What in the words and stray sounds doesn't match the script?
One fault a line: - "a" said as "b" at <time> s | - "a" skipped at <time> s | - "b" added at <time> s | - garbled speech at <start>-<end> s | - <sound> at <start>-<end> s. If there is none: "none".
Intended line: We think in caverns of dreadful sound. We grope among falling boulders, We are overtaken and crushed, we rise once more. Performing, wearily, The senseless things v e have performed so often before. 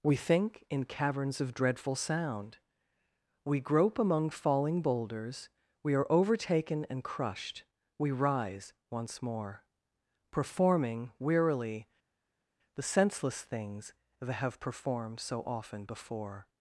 - "v e" said as "that" at 14.2 s